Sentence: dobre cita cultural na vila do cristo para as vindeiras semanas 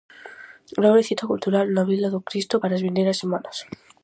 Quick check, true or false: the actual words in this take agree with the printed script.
true